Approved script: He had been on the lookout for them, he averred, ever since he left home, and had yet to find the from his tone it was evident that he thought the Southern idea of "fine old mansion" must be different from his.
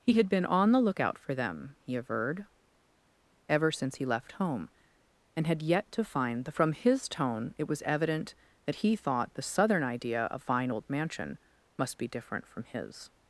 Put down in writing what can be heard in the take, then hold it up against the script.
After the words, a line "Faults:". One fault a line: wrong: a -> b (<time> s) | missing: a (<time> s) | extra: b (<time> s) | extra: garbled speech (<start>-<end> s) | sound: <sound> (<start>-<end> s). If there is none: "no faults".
He had been on the lookout for them, he averred, ever since he left home, and had yet to find the from his tone it was evident that he thought the Southern idea of "fine old mansion" must be different from his.
Faults:
no faults